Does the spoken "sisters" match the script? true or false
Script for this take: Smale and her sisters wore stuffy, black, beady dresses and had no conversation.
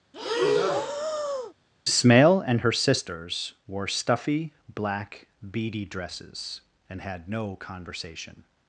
true